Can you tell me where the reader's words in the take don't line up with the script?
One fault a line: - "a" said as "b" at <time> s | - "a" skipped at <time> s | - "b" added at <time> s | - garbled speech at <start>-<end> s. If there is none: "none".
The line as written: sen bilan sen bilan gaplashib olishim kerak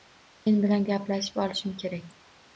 - "sen bilan" skipped at 0.9 s